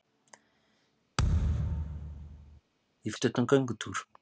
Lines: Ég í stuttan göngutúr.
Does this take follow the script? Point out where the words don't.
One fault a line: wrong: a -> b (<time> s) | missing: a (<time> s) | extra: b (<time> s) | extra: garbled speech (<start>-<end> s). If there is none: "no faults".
no faults